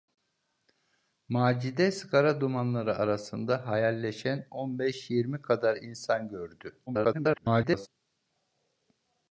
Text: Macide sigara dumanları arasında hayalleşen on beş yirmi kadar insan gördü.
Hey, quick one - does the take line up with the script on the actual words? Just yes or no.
no